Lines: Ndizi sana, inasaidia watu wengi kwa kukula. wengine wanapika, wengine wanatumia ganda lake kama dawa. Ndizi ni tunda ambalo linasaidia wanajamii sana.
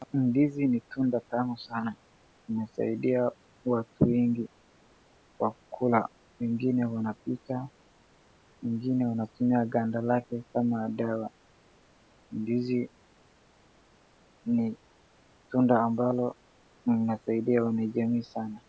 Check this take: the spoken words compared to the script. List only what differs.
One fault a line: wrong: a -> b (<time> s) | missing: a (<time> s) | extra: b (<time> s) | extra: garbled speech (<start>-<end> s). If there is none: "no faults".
extra: ni tunda tamu (0.7 s)